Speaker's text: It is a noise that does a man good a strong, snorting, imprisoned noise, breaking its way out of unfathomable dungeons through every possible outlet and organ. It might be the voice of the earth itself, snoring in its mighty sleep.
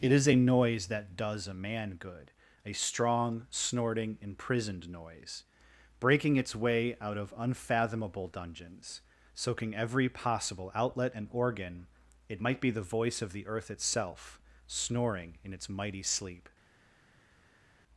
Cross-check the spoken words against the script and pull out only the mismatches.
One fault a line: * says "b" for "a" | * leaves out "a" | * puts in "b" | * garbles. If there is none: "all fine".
* says "soaking" for "through"